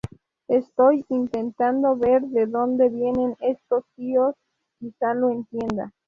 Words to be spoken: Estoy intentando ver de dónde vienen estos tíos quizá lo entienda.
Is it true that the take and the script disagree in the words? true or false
false